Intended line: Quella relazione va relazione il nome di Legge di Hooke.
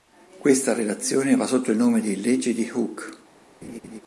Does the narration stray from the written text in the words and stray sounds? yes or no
yes